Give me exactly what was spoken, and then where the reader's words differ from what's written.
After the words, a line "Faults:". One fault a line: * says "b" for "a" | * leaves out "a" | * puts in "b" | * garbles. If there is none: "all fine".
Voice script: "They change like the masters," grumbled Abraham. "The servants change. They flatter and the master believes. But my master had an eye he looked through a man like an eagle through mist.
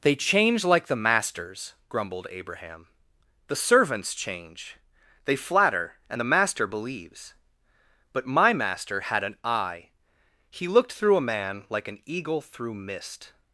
"They change like the masters," grumbled Abraham. "The servants change. They flatter and the master believes. But my master had an eye he looked through a man like an eagle through mist.
Faults:
all fine